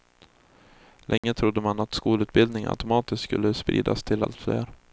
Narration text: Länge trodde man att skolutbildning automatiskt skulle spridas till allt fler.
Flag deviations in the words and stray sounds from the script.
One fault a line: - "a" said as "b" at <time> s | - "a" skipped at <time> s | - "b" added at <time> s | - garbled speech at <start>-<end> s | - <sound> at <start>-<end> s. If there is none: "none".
- dropout at 1.2-1.2 s